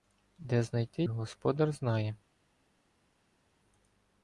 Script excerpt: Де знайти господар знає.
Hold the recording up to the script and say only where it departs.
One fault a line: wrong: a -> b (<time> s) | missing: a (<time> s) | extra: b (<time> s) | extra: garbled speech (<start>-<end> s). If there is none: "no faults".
no faults